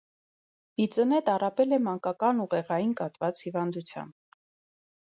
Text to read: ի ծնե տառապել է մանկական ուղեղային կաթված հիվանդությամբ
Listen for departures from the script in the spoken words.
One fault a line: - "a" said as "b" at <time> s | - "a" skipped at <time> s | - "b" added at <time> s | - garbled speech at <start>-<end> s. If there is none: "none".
none